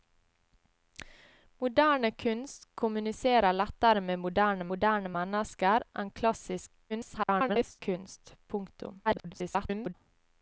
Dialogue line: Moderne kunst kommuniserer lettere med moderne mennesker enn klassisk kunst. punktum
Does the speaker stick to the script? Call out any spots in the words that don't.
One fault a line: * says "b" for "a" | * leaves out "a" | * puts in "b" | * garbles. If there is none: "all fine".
* puts in "moderne"
* garbles
* garbles